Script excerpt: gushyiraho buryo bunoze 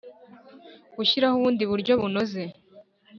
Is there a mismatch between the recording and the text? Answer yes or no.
yes